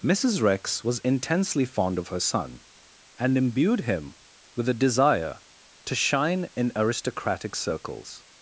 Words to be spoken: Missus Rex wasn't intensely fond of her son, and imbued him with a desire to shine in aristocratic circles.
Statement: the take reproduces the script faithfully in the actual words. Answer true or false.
false